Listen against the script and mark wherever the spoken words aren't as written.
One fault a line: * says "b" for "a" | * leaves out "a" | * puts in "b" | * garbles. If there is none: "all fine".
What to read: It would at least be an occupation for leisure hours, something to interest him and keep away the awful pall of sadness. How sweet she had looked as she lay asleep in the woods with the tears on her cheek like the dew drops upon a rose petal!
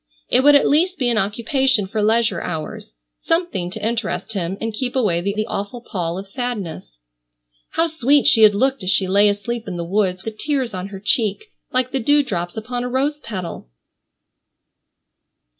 * puts in "the"
* leaves out "with"